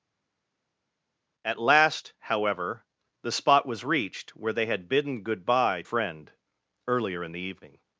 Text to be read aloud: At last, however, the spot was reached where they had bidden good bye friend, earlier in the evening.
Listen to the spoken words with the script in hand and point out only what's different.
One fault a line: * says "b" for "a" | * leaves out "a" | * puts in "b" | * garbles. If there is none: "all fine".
all fine